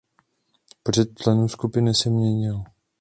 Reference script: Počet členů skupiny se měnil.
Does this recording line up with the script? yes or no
yes